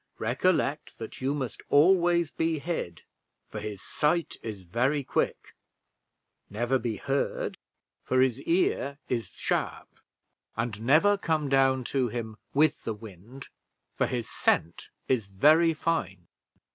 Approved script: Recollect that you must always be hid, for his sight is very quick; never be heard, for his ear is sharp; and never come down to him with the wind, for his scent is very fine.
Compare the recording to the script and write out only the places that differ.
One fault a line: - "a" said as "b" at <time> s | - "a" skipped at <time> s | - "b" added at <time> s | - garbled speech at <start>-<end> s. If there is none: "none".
none